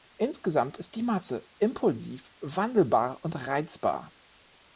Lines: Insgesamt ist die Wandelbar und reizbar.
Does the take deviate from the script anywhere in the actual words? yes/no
yes